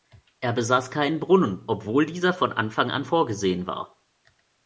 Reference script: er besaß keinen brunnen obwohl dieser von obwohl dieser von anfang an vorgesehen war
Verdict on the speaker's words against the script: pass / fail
fail